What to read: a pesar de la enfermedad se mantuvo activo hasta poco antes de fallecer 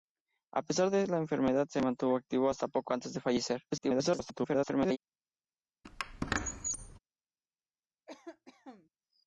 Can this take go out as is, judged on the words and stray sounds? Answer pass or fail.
fail